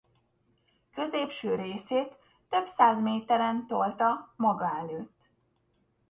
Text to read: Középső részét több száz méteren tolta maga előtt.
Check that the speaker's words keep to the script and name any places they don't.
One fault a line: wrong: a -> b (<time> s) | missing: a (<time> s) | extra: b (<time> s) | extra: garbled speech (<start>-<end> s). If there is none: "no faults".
no faults